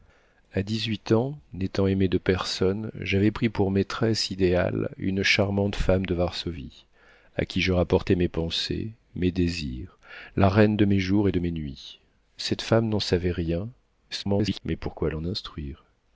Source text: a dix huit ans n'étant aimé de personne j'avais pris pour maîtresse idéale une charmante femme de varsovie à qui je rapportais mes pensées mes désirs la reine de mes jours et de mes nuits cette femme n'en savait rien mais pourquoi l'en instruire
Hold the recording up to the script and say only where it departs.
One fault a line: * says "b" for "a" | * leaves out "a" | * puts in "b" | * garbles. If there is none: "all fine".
* garbles